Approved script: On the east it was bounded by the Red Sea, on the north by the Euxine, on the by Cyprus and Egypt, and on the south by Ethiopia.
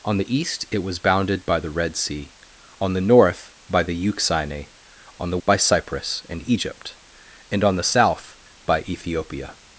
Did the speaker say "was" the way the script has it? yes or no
yes